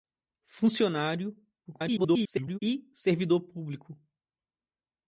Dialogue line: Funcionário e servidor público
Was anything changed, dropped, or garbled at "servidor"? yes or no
no